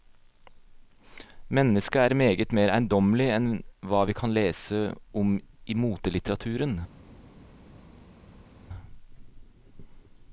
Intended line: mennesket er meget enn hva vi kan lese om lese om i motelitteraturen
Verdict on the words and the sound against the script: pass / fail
fail